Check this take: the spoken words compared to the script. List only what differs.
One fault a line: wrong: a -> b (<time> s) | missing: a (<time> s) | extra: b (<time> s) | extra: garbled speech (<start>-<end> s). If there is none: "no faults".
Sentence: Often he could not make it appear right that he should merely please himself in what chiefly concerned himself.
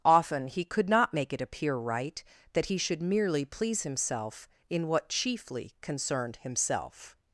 no faults